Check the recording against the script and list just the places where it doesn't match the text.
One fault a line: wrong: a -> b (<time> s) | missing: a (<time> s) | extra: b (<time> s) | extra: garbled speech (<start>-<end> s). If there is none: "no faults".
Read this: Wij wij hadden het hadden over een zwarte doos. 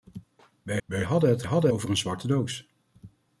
no faults